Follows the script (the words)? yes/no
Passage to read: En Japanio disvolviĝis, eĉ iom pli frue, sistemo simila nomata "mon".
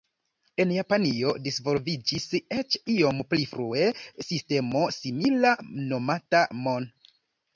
yes